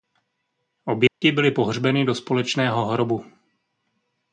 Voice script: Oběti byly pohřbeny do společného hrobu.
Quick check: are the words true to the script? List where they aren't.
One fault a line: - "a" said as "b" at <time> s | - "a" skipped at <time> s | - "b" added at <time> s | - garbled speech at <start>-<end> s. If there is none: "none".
none